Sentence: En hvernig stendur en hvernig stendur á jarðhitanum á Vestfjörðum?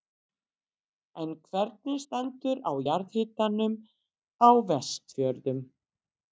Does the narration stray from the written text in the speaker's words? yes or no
yes